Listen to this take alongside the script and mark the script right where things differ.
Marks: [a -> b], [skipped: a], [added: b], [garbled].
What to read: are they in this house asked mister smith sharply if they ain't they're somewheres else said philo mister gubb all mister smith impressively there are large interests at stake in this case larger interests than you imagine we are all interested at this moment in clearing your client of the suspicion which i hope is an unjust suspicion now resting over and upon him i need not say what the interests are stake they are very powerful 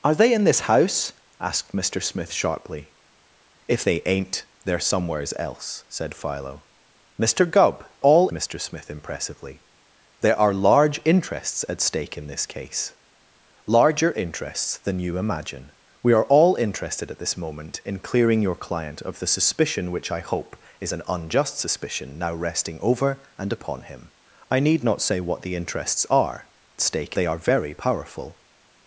are they in this house asked mister smith sharply if they ain't they're somewheres else said philo mister gubb all mister smith impressively there are large interests at stake in this case larger interests than you imagine we are all interested at this moment in clearing your client of the suspicion which i hope is an unjust suspicion now resting over and upon him i need not say what the interests are stake they are very powerful